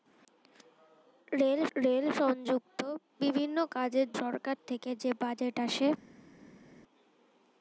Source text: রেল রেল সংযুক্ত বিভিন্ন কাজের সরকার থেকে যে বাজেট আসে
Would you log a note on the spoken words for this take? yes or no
no